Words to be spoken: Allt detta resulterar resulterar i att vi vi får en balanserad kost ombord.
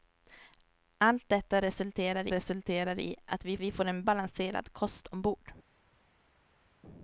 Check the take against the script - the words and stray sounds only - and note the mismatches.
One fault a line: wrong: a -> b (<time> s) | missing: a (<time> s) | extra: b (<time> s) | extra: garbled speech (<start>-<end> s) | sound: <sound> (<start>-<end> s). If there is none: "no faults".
no faults